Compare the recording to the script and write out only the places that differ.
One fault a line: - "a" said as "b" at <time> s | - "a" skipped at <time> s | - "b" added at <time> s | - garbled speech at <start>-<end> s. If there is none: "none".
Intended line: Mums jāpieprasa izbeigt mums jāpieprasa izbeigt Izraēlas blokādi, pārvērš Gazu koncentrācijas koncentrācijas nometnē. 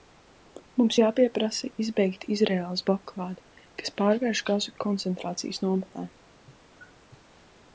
- "mums jāpieprasa izbeigt" skipped at 2.2 s
- "kas" added at 3.8 s
- "koncentrācijas" skipped at 5.6 s